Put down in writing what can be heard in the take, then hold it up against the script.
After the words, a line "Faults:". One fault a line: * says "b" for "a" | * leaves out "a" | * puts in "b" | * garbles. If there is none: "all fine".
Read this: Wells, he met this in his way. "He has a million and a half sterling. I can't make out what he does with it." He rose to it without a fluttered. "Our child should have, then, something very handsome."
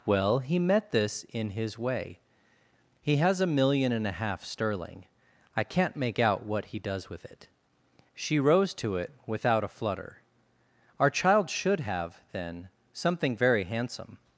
Well, he met this in his way. "He has a million and a half sterling. I can't make out what he does with it." She rose to it without a flutter. "Our child should have, then, something very handsome."
Faults:
* says "Well" for "Wells"
* says "She" for "He"
* says "flutter" for "fluttered"